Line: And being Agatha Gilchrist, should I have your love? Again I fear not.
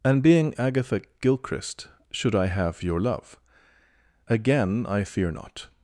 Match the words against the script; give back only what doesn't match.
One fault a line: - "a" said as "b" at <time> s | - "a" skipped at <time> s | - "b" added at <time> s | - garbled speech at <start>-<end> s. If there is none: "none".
none